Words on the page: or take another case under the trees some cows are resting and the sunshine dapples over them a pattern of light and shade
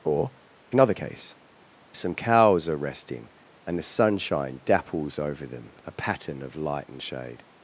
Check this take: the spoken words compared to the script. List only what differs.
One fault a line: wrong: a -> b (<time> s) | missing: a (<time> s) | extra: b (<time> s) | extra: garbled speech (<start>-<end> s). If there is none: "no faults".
missing: take (0.3 s)
missing: under the trees (1.3 s)